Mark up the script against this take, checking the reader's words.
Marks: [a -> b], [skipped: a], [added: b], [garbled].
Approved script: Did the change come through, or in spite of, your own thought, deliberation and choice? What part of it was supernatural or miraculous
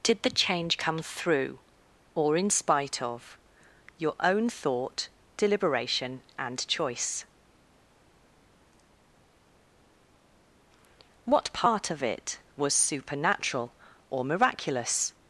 Did the change come through, or in spite of, your own thought, deliberation and choice? What part of it was supernatural or miraculous